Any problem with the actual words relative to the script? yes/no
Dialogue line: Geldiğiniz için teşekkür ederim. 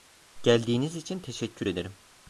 no